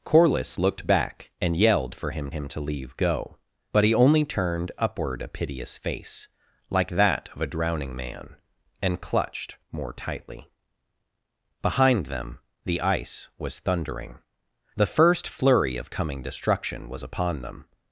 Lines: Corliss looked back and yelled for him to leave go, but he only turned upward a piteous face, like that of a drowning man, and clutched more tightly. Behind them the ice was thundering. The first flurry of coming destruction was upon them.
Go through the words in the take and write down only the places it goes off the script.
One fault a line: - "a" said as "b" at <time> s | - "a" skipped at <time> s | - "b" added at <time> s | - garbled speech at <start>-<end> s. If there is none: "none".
- "him" added at 2.3 s